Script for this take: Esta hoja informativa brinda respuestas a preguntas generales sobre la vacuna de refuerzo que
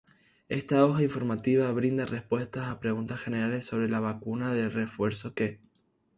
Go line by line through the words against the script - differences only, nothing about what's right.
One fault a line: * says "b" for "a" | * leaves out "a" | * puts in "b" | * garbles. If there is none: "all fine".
all fine